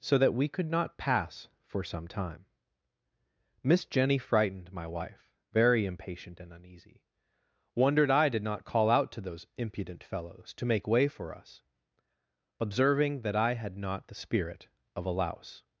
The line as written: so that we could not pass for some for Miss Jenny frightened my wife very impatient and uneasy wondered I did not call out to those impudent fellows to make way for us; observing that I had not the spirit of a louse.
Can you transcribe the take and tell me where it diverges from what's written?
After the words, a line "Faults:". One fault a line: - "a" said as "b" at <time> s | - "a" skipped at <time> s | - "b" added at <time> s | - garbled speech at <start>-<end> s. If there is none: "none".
so that we could not pass for some time Miss Jenny frightened my wife very impatient and uneasy wondered I did not call out to those impudent fellows to make way for us; observing that I had not the spirit of a louse.
Faults:
- "for" said as "time" at 2.1 s